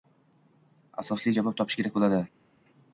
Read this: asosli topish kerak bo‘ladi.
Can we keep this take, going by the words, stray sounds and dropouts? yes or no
no